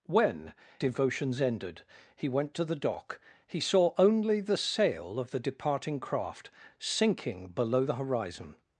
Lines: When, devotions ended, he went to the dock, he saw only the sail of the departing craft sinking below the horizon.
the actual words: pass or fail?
pass